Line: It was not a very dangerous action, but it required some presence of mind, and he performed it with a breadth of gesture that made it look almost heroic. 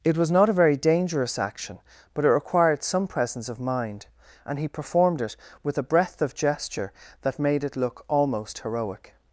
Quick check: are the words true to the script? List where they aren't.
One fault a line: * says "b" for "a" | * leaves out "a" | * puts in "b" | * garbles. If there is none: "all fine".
all fine